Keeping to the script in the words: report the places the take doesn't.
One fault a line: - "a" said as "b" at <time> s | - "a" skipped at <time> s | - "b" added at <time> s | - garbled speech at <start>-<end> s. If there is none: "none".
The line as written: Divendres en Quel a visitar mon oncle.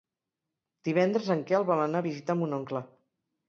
- "vol anar" added at 1.7 s